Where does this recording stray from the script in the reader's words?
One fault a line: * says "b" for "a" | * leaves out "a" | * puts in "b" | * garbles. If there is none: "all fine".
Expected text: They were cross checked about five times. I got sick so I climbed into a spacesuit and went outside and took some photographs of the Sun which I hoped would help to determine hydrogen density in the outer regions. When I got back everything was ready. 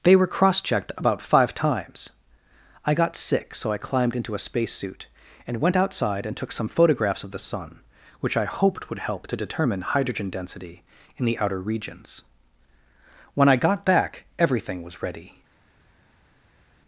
all fine